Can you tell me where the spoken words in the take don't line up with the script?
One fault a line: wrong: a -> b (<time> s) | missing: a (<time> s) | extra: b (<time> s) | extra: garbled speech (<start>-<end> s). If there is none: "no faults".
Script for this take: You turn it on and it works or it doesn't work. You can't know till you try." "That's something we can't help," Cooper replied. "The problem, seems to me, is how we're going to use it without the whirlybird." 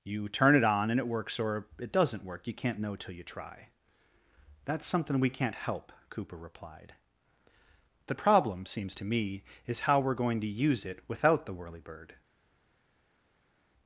no faults